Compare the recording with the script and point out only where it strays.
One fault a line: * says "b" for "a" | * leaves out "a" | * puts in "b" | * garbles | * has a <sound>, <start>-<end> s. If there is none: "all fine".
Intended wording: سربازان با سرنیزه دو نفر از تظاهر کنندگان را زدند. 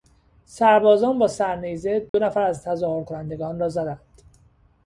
* has a dropout, 2.1-2.1 s